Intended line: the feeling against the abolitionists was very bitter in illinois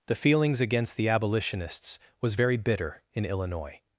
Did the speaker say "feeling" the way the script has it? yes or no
no